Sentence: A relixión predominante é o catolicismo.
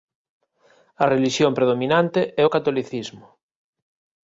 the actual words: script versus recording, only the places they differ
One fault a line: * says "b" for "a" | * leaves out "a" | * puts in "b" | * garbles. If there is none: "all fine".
all fine